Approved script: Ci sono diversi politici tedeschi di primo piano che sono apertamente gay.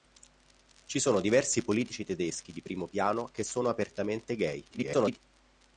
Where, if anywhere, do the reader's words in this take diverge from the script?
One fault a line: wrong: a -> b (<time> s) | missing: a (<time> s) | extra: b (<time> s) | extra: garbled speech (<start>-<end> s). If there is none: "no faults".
extra: garbled speech (4.7-5.2 s)